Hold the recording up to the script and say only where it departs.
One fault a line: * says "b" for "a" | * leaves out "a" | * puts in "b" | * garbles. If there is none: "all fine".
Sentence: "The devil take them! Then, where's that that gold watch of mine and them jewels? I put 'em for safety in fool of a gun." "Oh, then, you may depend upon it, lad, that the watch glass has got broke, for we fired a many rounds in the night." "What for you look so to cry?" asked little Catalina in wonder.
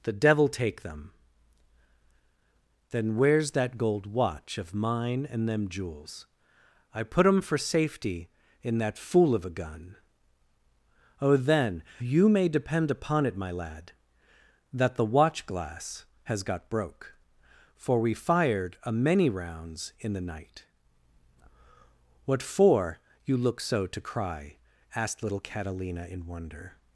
* leaves out "that"
* puts in "that"
* puts in "my"